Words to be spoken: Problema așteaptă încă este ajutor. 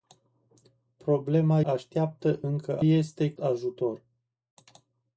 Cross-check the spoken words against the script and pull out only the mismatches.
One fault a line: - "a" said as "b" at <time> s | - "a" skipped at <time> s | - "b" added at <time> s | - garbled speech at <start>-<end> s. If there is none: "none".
none